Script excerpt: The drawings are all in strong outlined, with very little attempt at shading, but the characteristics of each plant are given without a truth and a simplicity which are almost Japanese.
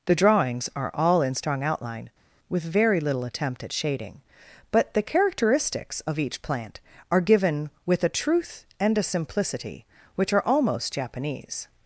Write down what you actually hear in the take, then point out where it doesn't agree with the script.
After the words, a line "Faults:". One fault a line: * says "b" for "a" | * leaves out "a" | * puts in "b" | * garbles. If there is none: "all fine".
The drawings are all in strong outline, with very little attempt at shading, but the characteristics of each plant are given with a truth and a simplicity which are almost Japanese.
Faults:
* says "outline" for "outlined"
* says "with" for "without"